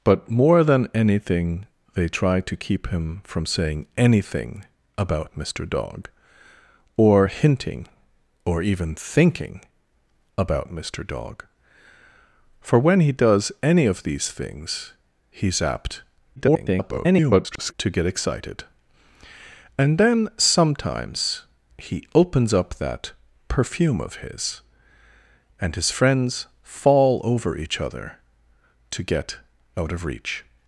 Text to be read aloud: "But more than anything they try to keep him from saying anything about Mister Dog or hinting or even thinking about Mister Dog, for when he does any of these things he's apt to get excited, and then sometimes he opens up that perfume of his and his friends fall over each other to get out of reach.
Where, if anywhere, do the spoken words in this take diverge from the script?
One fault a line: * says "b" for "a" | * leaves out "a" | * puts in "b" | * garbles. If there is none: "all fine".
* garbles